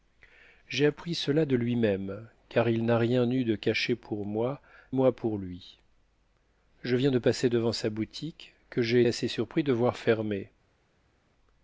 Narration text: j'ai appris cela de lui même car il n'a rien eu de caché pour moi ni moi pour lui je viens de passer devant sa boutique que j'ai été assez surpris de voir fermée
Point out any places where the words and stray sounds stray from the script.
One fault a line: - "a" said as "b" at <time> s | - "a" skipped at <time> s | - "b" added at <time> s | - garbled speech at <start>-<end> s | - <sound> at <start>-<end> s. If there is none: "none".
- "ni" skipped at 4.6 s
- "été" skipped at 9.0 s